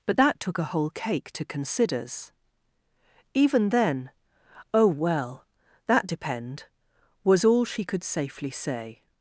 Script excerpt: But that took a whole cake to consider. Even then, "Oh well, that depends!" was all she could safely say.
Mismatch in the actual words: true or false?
true